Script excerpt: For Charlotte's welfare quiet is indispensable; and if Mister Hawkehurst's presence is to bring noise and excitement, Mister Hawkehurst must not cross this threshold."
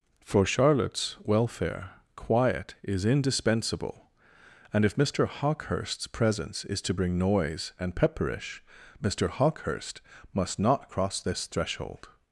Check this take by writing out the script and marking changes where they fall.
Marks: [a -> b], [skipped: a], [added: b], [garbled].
For Charlotte's welfare quiet is indispensable; and if Mister Hawkehurst's presence is to bring noise and [excitement, -> pepperish] Mister Hawkehurst must not cross this threshold."